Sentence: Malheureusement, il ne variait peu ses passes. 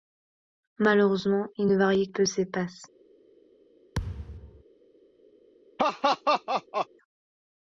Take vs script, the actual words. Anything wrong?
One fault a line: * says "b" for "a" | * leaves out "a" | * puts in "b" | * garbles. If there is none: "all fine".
all fine